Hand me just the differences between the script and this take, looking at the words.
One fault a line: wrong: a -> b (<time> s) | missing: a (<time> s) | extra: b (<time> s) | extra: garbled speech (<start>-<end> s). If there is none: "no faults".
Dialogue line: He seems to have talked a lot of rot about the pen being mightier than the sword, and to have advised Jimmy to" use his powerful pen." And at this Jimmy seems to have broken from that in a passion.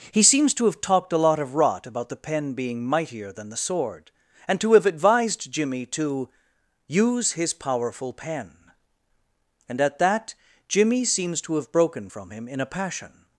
wrong: this -> that (10.0 s)
wrong: that -> him (12.3 s)